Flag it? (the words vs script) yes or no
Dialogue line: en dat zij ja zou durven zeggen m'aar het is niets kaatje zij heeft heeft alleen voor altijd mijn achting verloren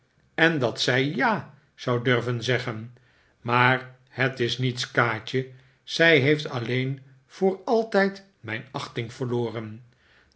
yes